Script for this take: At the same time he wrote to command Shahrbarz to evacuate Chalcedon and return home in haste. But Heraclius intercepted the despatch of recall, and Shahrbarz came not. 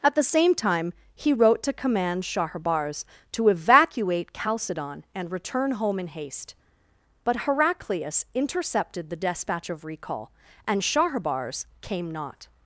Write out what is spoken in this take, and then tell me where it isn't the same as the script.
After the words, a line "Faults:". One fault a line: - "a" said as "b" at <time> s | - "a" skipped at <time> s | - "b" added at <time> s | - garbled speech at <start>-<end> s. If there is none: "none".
At the same time he wrote to command Shahrbarz to evacuate Chalcedon and return home in haste. But Heraclius intercepted the despatch of recall, and Shahrbarz came not.
Faults:
none